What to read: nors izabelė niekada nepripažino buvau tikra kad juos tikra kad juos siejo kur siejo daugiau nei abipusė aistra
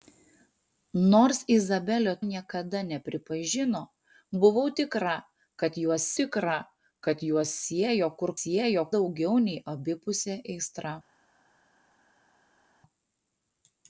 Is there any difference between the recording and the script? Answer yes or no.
no